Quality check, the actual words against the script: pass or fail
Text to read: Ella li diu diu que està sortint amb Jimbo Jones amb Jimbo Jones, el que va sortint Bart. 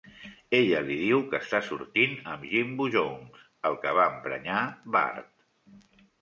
fail